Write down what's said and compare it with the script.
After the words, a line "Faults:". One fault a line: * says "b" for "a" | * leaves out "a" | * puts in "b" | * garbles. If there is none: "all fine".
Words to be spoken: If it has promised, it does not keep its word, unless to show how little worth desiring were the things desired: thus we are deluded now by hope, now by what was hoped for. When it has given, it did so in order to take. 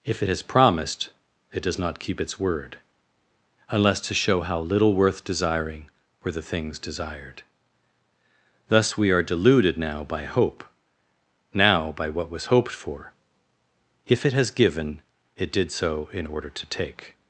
If it has promised, it does not keep its word, unless to show how little worth desiring were the things desired: thus we are deluded now by hope, now by what was hoped for. If it has given, it did so in order to take.
Faults:
* says "If" for "When"